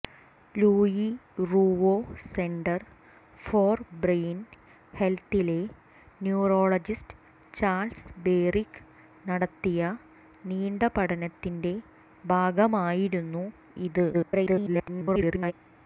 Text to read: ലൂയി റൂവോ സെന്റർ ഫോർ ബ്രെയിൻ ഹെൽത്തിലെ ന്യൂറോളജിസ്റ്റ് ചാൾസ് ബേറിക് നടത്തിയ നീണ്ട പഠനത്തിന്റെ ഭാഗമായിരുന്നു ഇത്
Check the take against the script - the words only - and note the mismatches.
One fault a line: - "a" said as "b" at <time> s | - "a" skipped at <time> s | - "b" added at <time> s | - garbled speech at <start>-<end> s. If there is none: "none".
- garbled speech at 14.1-15.5 s